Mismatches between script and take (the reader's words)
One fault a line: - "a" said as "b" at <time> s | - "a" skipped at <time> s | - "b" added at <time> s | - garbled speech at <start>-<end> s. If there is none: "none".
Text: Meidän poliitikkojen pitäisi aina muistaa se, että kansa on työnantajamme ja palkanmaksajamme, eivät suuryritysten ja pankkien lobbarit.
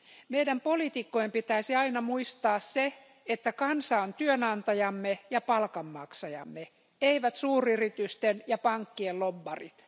none